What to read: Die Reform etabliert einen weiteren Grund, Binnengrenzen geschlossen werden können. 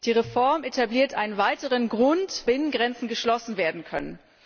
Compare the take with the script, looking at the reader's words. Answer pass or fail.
pass